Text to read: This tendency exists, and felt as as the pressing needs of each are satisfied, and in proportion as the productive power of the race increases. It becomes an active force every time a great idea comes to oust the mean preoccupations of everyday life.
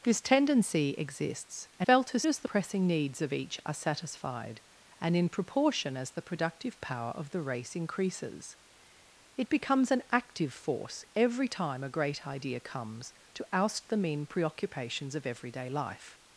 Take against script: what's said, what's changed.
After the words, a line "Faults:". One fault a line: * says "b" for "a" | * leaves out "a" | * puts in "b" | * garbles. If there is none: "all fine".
This tendency exists, and felt as as the pressing needs of each are satisfied, and in proportion as the productive power of the race increases. It becomes an active force every time a great idea comes to oust the mean preoccupations of everyday life.
Faults:
all fine